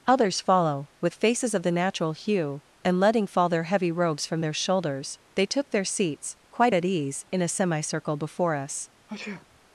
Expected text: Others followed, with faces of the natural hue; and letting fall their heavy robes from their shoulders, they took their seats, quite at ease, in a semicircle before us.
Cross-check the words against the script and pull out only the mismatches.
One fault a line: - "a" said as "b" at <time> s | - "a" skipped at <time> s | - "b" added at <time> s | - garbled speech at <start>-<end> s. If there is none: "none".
- "followed" said as "follow" at 0.4 s